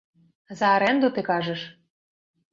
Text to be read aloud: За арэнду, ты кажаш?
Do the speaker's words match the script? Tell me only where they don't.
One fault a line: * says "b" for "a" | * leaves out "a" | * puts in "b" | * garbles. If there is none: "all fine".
all fine